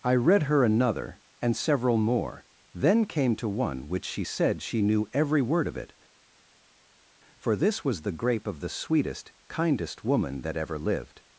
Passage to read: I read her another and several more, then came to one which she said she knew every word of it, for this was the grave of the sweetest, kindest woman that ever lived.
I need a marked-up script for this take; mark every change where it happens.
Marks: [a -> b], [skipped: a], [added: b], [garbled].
I read her another and several more, then came to one which she said she knew every word of it, for this was the [grave -> grape] of the sweetest, kindest woman that ever lived.